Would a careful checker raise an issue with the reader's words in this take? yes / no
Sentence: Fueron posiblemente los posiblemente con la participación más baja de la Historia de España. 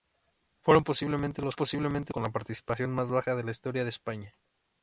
no